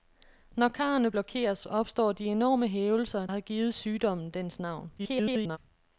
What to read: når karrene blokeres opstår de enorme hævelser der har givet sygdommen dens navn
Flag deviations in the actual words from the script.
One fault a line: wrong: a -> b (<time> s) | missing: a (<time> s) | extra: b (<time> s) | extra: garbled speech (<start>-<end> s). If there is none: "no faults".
missing: der (3.3 s)
extra: garbled speech (5.0-5.6 s)